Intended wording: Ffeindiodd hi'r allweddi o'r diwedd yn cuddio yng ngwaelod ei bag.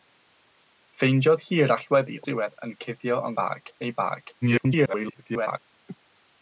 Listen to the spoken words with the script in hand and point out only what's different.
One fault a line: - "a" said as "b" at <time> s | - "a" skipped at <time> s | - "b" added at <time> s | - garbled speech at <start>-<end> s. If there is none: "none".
- "o'r" skipped at 2.2 s
- "ngwaelod" said as "bag" at 3.4 s
- garbled speech at 4.4-5.6 s